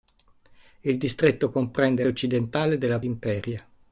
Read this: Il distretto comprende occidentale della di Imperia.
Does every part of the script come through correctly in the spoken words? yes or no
yes